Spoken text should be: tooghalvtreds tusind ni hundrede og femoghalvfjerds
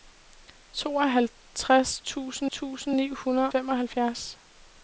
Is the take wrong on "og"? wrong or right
wrong